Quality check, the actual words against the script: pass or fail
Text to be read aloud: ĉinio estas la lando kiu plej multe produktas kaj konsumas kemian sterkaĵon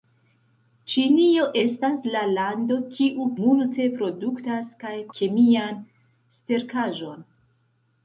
fail